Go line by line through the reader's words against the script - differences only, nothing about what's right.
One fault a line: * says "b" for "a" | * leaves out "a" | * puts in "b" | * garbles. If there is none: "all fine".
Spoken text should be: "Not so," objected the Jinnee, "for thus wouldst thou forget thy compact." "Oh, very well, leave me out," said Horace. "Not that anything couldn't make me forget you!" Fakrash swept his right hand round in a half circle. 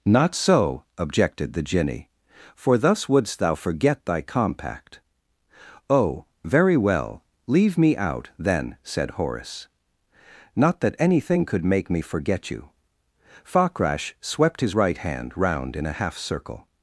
* puts in "then"
* says "could" for "couldn't"